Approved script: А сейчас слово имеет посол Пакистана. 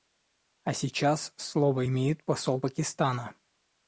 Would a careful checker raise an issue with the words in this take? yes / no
no